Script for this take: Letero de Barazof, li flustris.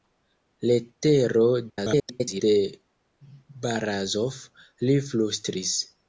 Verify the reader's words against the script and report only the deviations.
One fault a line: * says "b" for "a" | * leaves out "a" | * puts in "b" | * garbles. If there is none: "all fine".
* garbles